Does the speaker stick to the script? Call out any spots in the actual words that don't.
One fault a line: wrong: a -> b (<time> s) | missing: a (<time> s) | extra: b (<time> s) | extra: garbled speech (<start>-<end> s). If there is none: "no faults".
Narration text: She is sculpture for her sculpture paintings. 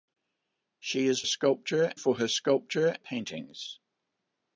no faults